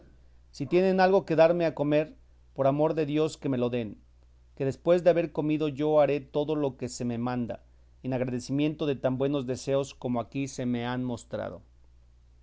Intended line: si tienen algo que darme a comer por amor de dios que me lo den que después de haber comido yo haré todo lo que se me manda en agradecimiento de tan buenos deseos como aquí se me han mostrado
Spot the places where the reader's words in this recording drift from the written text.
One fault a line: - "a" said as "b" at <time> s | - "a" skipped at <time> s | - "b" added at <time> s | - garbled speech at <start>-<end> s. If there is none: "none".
none